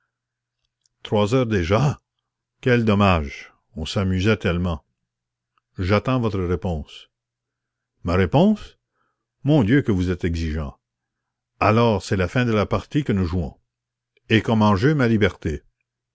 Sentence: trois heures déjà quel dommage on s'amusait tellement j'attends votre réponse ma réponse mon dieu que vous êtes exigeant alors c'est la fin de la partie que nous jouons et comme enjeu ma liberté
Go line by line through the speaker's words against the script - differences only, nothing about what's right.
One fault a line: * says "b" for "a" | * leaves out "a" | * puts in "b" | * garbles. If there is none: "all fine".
all fine